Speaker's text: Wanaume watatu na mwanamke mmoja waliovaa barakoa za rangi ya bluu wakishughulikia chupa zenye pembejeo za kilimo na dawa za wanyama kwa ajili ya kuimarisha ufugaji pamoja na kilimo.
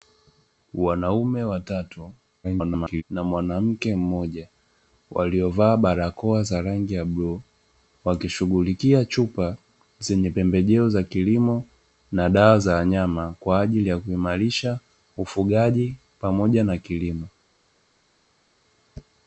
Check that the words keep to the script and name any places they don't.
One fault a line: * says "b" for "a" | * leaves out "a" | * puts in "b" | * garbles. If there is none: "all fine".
* garbles